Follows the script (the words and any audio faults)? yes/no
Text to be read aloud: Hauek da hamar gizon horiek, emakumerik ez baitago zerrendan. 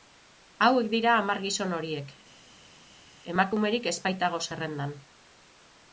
no